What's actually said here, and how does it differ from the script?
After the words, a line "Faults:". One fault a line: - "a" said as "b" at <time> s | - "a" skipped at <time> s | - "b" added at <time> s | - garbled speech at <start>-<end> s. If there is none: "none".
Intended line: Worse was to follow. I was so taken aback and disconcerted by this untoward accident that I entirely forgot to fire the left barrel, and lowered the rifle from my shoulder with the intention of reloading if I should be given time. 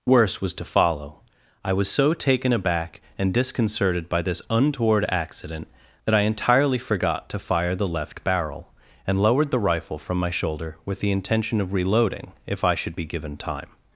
Worse was to follow. I was so taken aback and disconcerted by this untoward accident that I entirely forgot to fire the left barrel, and lowered the rifle from my shoulder with the intention of reloading if I should be given time.
Faults:
none